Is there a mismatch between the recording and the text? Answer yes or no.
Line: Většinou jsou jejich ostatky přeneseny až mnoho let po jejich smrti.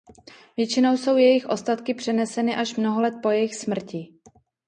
no